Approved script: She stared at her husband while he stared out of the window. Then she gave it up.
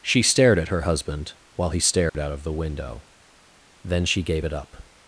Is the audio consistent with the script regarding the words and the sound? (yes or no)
no